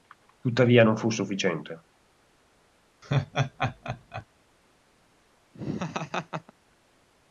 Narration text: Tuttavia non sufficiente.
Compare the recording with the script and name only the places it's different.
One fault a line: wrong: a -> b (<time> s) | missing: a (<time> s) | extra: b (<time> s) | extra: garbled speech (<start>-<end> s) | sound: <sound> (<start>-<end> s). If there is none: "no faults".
extra: fu (1.0 s)
sound: laugh (3.0-4.3 s)
sound: laugh (5.5-6.5 s)